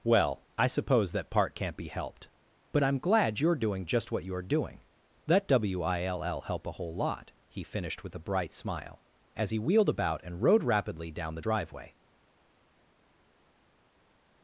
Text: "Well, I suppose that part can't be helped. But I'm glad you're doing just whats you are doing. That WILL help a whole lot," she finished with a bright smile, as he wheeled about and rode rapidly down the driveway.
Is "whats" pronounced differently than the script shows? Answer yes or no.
yes